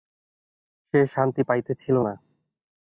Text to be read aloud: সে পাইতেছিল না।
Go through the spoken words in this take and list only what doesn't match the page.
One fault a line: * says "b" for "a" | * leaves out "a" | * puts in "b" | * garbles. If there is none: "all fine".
* puts in "শান্তি"